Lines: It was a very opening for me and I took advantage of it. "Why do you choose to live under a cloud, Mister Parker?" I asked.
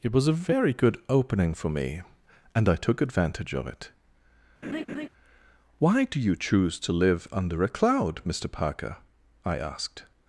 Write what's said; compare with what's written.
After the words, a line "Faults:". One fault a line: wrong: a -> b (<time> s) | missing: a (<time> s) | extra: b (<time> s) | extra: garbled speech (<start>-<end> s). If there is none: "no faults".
It was a very good opening for me and I took advantage of it. "Why do you choose to live under a cloud, Mister Parker?" I asked.
Faults:
extra: good (0.7 s)